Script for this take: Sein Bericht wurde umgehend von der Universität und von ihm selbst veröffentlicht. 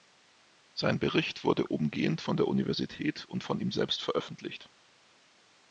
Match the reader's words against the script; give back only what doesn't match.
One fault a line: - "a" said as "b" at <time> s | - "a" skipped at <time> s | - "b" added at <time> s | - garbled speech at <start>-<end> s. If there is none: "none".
none